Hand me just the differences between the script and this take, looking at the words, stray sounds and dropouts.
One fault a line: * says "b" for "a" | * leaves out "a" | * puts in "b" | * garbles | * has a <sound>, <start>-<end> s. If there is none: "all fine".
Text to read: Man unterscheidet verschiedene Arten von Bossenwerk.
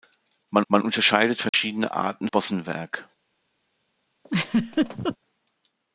* puts in "man"
* has a dropout, 1.5-1.5 s
* leaves out "von"
* has a laugh, 4.2-5.2 s